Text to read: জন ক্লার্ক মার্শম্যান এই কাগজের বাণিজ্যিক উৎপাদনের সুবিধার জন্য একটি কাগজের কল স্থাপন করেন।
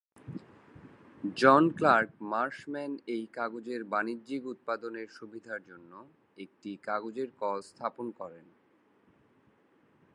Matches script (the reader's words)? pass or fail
pass